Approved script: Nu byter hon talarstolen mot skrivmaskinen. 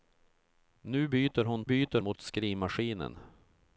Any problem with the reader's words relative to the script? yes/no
yes